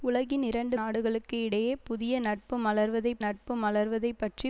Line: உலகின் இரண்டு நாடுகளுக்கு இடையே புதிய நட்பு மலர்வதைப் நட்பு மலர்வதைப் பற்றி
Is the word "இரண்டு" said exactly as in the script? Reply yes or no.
yes